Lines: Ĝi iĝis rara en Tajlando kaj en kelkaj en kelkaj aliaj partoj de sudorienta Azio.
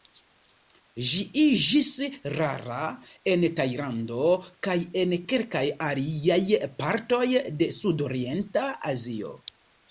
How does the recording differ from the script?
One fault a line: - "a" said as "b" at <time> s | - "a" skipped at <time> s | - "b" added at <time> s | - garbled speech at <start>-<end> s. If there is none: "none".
- "en kelkaj" skipped at 5.6 s